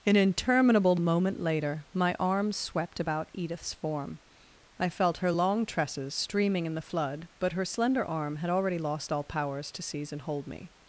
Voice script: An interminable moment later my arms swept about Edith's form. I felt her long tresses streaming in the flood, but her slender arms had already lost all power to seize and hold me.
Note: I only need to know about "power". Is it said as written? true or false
false